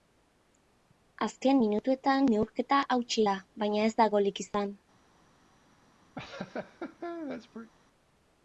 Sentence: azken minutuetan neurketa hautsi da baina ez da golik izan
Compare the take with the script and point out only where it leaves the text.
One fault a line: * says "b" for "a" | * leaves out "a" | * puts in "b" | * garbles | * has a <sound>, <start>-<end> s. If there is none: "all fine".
* has a laugh, 6.2-7.7 s